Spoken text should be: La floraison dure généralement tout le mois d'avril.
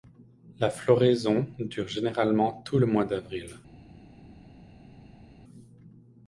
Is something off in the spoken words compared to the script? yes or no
no